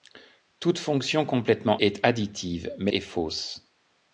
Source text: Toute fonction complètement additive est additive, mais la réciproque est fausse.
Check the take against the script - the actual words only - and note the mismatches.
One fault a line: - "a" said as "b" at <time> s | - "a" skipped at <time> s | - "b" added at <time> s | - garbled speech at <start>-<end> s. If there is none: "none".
- "additive" skipped at 1.8 s
- "la réciproque" skipped at 2.9 s